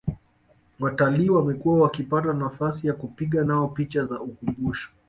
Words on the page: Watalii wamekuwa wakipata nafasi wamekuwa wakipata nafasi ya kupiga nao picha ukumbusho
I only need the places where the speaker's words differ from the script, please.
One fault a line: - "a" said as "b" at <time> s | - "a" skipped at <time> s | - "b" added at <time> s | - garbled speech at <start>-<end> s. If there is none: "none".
- "wamekuwa wakipata nafasi" skipped at 2.9 s
- "za" added at 4.0 s